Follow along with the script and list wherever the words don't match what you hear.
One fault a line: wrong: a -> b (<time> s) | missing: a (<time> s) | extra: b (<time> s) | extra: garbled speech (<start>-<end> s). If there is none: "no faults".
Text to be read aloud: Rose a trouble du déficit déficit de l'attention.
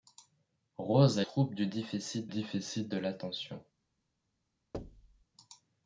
no faults